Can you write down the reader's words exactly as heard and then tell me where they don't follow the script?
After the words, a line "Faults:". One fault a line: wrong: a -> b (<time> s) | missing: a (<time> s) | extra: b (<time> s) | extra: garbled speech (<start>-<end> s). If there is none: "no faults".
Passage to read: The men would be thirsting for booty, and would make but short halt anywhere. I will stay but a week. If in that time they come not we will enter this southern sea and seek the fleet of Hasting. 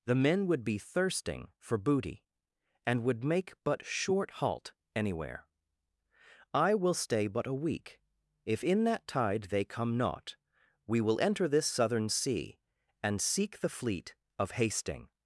The men would be thirsting for booty, and would make but short halt anywhere. I will stay but a week. If in that tide they come not we will enter this southern sea and seek the fleet of Hasting.
Faults:
wrong: time -> tide (9.1 s)